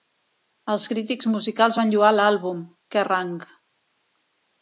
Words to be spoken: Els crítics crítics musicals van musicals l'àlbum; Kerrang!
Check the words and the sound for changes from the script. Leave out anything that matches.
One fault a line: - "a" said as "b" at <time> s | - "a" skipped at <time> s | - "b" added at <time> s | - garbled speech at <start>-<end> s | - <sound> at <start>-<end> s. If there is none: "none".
- "crítics" skipped at 1.3 s
- "musicals" said as "lloar" at 1.9 s